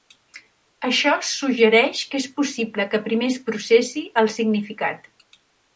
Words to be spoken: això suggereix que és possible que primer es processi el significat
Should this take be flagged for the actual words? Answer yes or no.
no